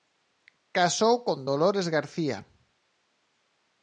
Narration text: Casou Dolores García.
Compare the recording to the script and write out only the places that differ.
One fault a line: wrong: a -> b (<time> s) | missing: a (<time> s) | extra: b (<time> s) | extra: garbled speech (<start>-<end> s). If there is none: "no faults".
extra: con (1.3 s)